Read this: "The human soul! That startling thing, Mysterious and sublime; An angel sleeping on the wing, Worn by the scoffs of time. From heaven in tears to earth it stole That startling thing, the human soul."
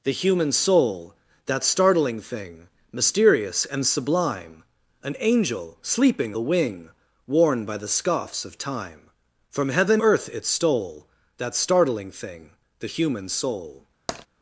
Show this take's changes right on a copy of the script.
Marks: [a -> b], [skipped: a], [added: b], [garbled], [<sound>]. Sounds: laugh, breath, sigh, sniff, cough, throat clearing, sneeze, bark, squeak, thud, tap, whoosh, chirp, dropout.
"The human soul! That startling thing, Mysterious and sublime; An angel sleeping [skipped: on] the wing, Worn by the scoffs of time. From heaven [skipped: in tears to] earth it stole That startling thing, the human soul." [tap]